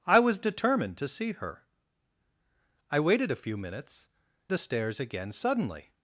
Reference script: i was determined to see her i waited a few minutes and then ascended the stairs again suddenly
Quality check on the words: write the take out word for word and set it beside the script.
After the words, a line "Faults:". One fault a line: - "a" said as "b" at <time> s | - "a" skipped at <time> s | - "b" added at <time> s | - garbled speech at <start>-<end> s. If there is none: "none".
i was determined to see her i waited a few minutes the stairs again suddenly
Faults:
- "and then ascended" skipped at 4.1 s